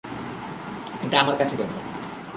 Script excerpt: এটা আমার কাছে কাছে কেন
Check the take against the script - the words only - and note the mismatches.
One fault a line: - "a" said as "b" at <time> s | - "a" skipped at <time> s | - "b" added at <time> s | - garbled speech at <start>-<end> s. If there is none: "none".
- "কাছে" skipped at 1.6 s